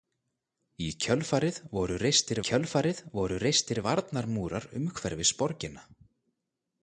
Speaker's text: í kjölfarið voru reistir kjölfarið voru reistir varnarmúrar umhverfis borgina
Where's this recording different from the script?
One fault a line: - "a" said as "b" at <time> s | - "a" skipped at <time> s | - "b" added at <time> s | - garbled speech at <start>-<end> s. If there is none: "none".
none